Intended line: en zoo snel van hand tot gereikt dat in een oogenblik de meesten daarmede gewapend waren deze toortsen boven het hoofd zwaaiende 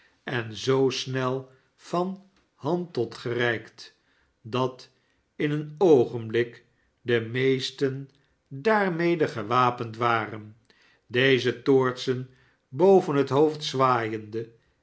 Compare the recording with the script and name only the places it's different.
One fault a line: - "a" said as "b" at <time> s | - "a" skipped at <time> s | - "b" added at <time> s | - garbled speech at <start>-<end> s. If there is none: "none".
none